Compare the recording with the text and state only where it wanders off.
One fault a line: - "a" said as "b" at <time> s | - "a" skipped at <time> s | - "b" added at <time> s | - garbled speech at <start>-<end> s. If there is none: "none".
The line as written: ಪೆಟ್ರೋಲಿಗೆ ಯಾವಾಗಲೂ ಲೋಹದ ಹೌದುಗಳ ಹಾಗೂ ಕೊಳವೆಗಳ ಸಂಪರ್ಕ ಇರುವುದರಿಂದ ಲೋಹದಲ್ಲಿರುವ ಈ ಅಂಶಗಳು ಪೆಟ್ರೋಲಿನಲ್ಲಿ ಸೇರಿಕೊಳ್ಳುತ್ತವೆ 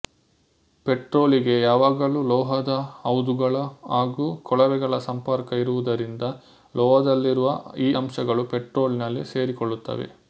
none